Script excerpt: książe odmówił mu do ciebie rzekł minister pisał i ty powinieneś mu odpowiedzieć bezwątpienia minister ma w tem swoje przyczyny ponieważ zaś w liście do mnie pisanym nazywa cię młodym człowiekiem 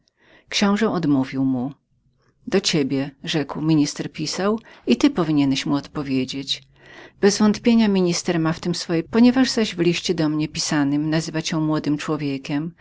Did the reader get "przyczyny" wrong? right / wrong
wrong